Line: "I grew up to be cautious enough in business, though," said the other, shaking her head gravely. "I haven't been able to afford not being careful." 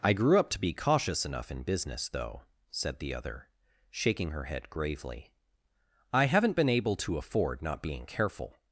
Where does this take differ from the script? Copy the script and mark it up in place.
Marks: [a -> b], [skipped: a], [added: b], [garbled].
"I grew up to be cautious enough in business, though," said the other, shaking her head gravely. "I haven't been able to afford not being careful."